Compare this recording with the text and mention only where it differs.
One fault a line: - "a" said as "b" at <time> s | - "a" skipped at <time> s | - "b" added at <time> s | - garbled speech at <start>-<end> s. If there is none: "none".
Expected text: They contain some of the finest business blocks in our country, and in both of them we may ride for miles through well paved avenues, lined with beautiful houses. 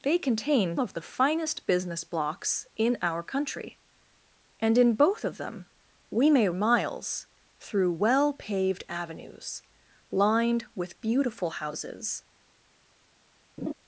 - "some" skipped at 0.8 s
- "ride for" skipped at 6.5 s